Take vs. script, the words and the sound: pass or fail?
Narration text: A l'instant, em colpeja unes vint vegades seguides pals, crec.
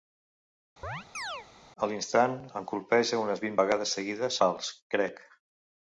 fail